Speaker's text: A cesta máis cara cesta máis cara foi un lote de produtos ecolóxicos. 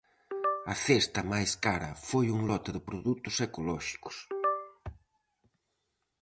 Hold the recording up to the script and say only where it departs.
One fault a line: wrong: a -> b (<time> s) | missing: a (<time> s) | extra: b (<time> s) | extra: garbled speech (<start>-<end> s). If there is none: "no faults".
missing: cesta máis cara (1.9 s)